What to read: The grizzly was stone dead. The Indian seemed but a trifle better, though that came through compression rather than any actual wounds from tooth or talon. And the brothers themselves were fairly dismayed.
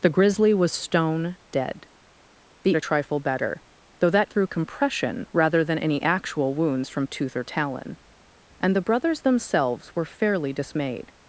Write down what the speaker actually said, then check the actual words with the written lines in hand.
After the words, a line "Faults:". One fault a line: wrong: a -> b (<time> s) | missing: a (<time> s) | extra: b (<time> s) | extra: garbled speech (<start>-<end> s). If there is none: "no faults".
The grizzly was stone dead. The A trifle better, though that through compression rather than any actual wounds from tooth or talon. And the brothers themselves were fairly dismayed.
Faults:
missing: Indian seemed but (2.7 s)
missing: came (4.3 s)